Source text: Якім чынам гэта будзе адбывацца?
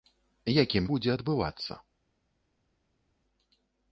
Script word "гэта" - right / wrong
wrong